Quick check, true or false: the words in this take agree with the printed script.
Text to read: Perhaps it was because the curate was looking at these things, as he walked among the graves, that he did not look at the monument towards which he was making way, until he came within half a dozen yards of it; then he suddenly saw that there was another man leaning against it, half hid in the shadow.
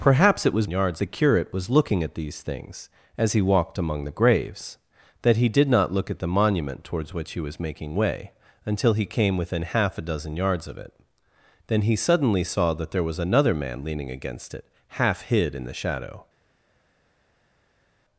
false